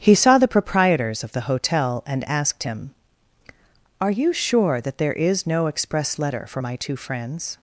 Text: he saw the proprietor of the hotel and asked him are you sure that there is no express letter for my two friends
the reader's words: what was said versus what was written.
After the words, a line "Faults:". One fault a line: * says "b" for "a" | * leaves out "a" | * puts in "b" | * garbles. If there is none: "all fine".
he saw the proprietors of the hotel and asked him are you sure that there is no express letter for my two friends
Faults:
* says "proprietors" for "proprietor"